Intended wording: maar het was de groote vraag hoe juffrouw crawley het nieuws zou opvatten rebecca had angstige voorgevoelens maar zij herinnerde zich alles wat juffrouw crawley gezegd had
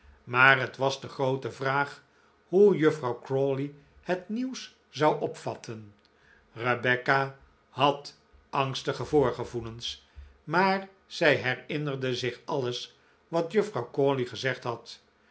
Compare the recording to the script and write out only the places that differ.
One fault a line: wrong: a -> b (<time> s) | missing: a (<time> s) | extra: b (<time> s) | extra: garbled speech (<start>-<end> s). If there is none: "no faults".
no faults